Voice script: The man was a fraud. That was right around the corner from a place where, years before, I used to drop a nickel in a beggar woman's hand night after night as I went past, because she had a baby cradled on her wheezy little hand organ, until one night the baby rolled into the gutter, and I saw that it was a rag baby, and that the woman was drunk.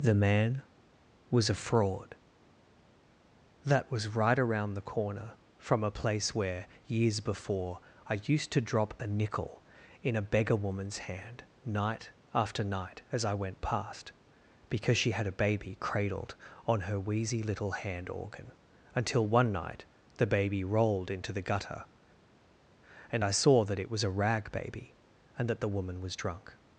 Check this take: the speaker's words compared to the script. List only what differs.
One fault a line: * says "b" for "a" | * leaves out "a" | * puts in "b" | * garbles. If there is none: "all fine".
all fine